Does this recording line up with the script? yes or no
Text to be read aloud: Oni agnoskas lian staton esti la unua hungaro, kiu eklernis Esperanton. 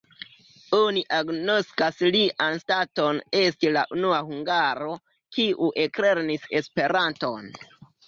yes